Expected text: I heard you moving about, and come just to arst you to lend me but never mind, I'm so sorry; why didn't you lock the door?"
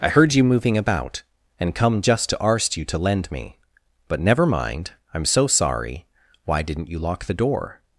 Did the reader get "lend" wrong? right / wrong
right